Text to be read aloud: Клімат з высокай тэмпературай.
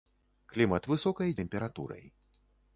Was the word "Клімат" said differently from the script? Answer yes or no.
no